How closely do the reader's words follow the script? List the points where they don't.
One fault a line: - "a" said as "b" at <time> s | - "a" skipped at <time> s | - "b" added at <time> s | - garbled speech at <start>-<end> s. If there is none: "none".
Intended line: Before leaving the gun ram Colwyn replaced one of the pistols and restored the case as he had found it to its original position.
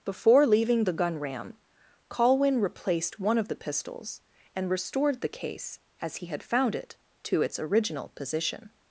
none